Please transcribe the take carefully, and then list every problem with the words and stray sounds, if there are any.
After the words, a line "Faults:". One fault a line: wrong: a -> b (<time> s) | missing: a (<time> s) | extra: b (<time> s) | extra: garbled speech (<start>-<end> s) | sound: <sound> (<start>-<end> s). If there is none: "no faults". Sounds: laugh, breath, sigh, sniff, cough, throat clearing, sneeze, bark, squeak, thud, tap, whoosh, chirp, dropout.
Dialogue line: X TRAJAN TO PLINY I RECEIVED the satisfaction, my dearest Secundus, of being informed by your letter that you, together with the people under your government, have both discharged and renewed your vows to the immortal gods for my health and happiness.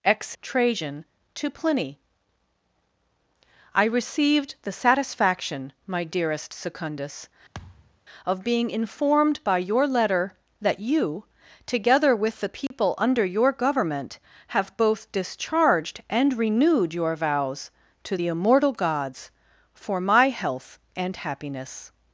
X TRAJAN TO PLINY I RECEIVED the satisfaction, my dearest Secundus, of being informed by your letter that you, together with the people under your government, have both discharged and renewed your vows to the immortal gods for my health and happiness.
Faults:
sound: thud (7.5-8.0 s)
sound: dropout (12.7-12.7 s)